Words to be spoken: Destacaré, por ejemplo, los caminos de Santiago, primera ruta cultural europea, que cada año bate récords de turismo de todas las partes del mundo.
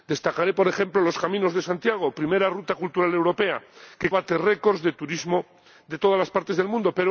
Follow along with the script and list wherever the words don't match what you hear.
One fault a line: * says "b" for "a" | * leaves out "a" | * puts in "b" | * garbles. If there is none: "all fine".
* leaves out "cada año"